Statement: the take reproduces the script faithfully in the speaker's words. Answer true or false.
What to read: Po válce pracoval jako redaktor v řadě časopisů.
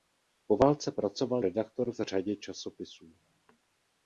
false